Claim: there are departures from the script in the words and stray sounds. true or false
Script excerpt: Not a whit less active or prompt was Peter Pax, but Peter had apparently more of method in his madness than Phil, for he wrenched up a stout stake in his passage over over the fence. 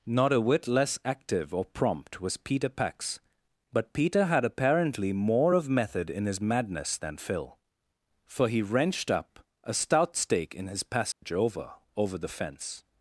true